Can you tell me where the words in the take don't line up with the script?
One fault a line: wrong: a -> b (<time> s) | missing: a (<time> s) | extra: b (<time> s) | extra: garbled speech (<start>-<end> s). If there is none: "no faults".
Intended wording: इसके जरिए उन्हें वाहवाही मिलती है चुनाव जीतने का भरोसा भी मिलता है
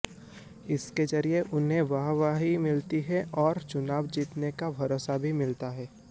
extra: और (3.4 s)